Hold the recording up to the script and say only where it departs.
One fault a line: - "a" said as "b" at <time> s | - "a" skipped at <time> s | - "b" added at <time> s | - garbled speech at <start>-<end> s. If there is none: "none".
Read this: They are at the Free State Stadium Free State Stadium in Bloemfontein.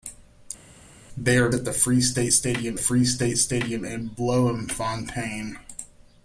none